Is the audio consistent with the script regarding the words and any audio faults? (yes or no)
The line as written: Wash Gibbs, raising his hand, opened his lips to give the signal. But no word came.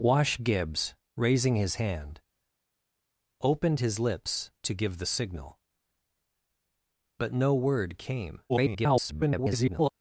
no